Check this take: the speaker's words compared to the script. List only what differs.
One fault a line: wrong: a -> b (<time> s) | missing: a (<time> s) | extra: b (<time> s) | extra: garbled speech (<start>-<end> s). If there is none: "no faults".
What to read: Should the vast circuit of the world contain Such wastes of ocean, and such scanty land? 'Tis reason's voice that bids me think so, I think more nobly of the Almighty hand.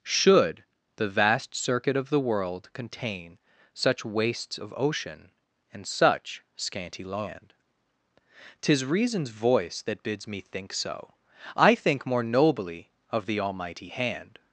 no faults